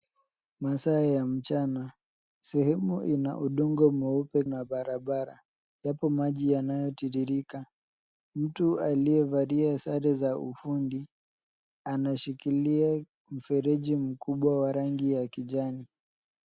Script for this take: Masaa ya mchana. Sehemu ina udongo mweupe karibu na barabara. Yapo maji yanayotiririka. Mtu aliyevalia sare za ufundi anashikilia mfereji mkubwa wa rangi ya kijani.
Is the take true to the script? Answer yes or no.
no